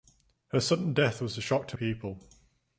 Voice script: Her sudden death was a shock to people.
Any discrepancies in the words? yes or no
no